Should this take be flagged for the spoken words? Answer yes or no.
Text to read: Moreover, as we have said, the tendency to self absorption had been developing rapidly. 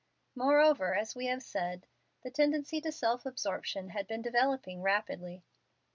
no